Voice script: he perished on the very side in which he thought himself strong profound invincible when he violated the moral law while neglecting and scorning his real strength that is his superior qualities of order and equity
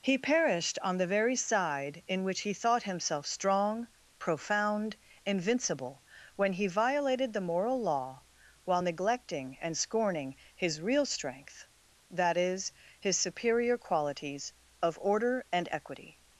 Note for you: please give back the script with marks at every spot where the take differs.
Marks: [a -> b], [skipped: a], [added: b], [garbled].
he perished on the very side in which he thought himself strong profound invincible when he violated the moral law while neglecting and scorning his real strength that is his superior qualities of order and equity